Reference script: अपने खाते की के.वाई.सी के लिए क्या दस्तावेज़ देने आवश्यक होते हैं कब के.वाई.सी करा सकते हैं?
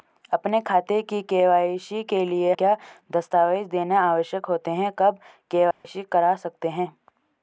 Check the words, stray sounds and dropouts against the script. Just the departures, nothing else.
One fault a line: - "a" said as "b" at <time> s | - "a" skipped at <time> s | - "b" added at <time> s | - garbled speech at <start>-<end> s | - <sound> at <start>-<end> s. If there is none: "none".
- dropout at 5.7-5.8 s